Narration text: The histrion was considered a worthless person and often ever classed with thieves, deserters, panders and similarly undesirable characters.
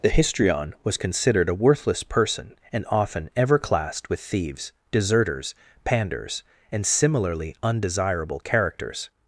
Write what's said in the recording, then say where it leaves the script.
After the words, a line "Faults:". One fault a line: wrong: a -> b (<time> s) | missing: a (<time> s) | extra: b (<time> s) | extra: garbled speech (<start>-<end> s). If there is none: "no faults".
The histrion was considered a worthless person and often ever classed with thieves, deserters, panders and similarly undesirable characters.
Faults:
no faults